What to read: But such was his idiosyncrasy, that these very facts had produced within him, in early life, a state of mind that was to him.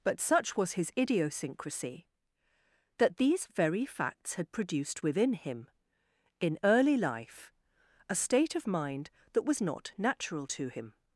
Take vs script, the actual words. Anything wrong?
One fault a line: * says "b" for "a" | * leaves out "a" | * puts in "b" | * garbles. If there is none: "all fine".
* puts in "not natural"